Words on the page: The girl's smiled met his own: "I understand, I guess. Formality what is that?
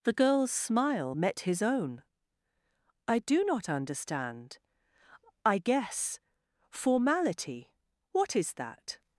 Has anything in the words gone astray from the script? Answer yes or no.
yes